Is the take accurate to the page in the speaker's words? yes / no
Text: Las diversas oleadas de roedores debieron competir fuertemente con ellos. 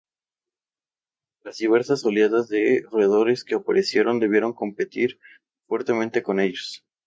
no